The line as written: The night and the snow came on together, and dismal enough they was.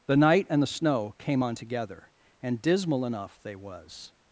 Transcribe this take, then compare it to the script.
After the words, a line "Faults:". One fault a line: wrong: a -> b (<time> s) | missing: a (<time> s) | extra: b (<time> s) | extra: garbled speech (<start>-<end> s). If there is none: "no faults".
The night and the snow came on together, and dismal enough they was.
Faults:
no faults